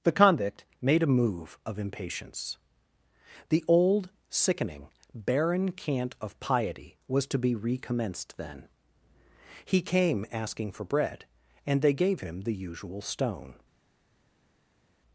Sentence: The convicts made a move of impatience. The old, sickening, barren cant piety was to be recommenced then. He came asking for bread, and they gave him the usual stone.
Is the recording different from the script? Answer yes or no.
yes